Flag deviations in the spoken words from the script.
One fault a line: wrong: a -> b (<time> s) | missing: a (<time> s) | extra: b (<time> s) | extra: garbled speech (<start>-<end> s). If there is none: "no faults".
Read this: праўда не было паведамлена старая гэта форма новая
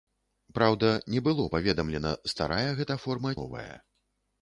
no faults